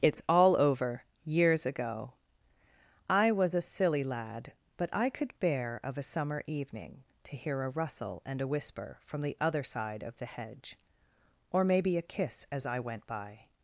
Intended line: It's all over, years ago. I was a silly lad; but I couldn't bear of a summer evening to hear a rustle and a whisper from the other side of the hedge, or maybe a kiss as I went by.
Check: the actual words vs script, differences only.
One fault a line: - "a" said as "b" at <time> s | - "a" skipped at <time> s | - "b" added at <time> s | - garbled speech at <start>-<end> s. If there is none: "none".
- "couldn't" said as "could" at 5.1 s